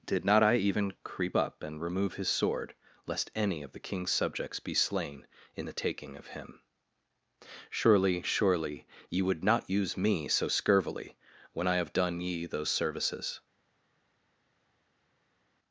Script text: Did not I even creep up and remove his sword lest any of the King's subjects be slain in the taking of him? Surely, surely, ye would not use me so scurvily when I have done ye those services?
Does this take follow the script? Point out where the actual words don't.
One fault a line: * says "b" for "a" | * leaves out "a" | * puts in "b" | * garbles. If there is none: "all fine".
all fine